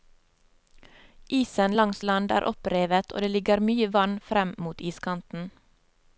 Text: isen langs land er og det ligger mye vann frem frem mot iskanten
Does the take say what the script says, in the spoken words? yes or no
no